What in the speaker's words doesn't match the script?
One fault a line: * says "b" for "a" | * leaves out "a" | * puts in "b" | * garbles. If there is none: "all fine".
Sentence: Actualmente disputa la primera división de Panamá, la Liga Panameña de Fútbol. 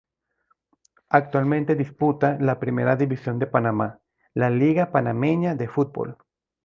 all fine